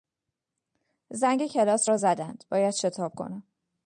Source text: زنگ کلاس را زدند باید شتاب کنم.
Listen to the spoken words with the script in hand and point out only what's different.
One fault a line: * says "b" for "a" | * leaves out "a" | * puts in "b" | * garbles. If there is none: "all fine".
all fine